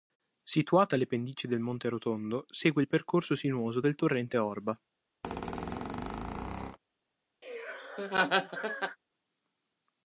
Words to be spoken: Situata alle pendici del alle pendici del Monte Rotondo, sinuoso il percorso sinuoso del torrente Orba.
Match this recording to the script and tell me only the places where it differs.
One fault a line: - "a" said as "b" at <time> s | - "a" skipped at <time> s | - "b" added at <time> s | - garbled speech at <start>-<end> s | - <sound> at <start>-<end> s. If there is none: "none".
- "alle pendici del" skipped at 1.6 s
- "sinuoso" said as "segue" at 2.5 s
- squeak at 5.2-6.8 s
- laugh at 7.4-9.0 s